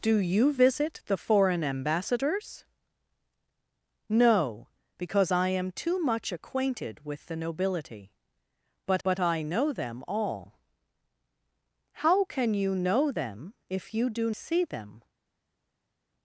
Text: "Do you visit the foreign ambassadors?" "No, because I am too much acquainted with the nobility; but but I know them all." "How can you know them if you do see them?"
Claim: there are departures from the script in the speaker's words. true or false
false